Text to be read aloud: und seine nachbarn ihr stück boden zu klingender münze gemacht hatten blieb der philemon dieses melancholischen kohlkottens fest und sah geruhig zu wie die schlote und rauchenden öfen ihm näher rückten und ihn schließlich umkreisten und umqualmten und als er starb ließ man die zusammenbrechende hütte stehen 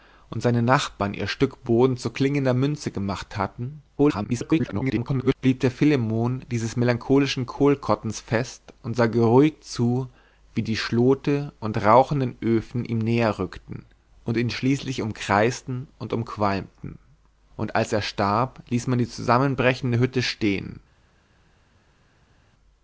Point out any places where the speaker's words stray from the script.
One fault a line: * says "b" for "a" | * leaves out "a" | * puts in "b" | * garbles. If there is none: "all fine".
* garbles